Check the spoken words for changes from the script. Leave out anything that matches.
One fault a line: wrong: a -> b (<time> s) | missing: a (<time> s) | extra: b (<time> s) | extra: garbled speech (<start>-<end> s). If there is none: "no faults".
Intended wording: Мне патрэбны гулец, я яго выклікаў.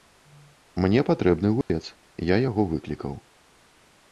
no faults